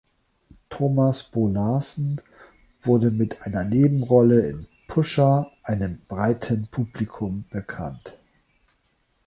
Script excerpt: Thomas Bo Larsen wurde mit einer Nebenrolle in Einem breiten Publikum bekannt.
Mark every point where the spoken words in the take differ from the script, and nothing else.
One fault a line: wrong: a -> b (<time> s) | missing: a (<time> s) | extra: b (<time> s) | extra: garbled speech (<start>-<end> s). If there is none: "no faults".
extra: Pusher (4.9 s)